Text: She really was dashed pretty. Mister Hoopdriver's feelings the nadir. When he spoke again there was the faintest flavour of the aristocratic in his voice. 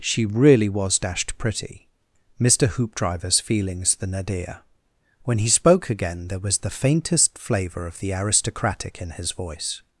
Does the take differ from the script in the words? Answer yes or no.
no